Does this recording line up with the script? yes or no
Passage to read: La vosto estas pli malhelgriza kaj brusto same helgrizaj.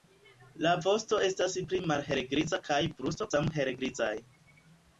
yes